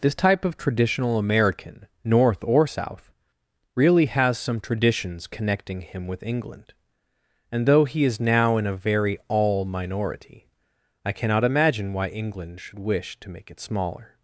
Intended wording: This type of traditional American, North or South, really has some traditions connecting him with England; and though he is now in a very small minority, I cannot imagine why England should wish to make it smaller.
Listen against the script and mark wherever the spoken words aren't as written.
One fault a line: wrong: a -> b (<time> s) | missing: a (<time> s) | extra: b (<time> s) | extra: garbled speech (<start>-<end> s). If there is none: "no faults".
wrong: small -> all (9.3 s)